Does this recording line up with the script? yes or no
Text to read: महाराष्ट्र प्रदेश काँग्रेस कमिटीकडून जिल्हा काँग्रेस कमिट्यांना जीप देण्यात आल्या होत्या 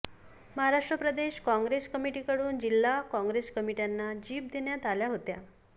yes